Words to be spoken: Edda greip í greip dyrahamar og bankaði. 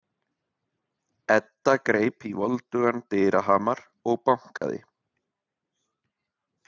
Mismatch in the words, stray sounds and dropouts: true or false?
true